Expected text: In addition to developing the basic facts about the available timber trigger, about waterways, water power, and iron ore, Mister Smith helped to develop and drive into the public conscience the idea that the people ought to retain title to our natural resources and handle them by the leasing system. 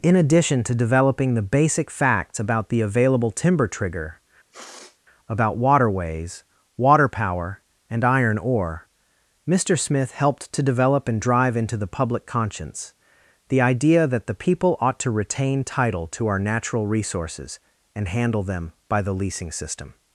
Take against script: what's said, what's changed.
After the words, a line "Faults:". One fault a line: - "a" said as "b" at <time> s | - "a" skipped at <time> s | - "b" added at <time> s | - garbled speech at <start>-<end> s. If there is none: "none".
In addition to developing the basic facts about the available timber trigger, about waterways, water power, and iron ore, Mister Smith helped to develop and drive into the public conscience the idea that the people ought to retain title to our natural resources and handle them by the leasing system.
Faults:
none